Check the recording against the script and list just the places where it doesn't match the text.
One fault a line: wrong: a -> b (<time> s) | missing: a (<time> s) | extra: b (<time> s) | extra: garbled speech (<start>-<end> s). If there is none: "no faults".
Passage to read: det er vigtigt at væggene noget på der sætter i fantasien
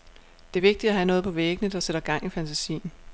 wrong: væggene -> have (0.9 s)
extra: væggene (1.3 s)
extra: gang (2.0 s)